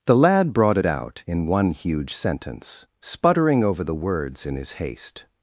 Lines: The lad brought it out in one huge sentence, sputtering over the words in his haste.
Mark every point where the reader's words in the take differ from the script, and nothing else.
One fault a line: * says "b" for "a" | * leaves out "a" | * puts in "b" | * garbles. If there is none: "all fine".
all fine